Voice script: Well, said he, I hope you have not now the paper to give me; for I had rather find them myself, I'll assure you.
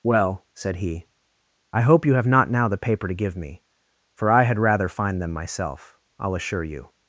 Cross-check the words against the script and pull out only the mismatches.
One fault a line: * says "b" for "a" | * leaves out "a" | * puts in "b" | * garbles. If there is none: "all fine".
all fine